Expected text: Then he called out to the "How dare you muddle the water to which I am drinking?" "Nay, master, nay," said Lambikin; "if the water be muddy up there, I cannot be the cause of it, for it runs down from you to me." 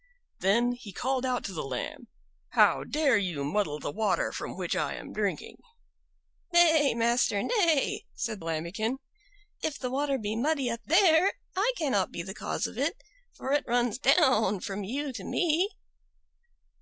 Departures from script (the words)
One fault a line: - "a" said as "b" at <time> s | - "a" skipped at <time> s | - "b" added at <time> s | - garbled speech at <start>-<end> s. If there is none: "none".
- "Lamb" added at 1.6 s
- "to" said as "from" at 4.3 s